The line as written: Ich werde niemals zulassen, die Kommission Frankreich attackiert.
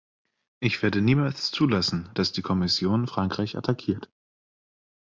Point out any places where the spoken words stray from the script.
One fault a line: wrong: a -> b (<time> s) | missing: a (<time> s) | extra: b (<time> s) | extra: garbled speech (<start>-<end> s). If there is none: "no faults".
extra: dass (2.1 s)